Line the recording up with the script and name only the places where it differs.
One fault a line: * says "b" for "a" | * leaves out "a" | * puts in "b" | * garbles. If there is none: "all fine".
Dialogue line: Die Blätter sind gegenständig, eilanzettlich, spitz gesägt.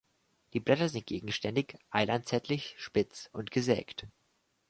* puts in "und"